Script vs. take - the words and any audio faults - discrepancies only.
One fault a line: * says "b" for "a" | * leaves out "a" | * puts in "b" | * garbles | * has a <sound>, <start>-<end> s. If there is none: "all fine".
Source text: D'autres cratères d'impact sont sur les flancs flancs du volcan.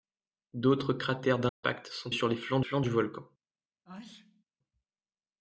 * has a dropout, 1.5-1.6 s
* has a sneeze, 3.9-4.4 s